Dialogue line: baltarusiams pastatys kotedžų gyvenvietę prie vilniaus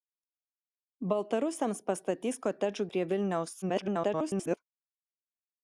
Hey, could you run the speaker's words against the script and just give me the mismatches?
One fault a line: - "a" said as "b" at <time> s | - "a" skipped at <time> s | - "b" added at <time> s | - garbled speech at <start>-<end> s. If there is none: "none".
- "gyvenvietę" skipped at 2.9 s
- garbled speech at 3.6-4.6 s